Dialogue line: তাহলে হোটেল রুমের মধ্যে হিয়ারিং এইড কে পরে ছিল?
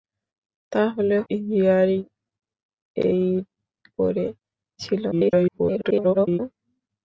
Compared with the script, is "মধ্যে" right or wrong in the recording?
wrong